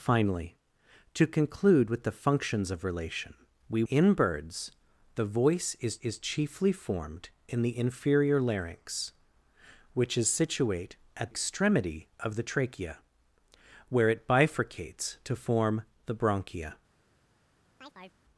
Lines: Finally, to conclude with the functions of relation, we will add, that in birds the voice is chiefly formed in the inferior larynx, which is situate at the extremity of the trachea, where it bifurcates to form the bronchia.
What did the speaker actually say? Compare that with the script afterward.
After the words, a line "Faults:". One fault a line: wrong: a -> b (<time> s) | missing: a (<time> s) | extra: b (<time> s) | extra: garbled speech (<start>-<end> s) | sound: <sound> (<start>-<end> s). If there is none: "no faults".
Finally, to conclude with the functions of relation, we in birds the voice is is chiefly formed in the inferior larynx, which is situate at extremity of the trachea, where it bifurcates to form the bronchia.
Faults:
missing: will add that (3.8 s)
extra: is (6.0 s)
missing: the (11.3 s)
sound: chirp (17.8-18.2 s)